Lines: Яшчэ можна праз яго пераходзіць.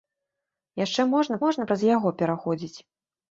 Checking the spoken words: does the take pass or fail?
fail